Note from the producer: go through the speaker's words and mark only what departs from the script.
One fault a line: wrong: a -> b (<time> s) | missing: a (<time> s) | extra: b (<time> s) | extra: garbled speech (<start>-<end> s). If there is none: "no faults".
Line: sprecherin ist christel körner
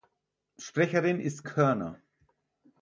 missing: christel (1.4 s)